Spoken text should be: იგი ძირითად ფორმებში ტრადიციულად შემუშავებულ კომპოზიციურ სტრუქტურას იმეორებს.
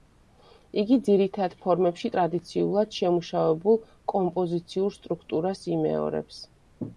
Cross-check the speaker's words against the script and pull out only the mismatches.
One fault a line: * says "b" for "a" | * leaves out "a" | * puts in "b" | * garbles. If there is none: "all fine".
all fine